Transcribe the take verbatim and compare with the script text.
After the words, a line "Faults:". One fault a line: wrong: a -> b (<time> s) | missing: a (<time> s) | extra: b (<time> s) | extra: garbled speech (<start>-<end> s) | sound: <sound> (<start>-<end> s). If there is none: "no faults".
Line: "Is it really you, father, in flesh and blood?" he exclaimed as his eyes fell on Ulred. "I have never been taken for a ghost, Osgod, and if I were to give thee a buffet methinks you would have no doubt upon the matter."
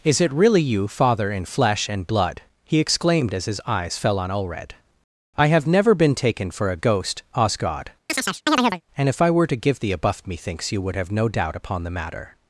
"Is it really you, father, in flesh and blood?" he exclaimed as his eyes fell on Ulred. "I have never been taken for a ghost, Osgod, and if I were to give thee a buff methinks you would have no doubt upon the matter."
Faults:
sound: chirp (8.1-8.8 s)
wrong: buffet -> buff (10.0 s)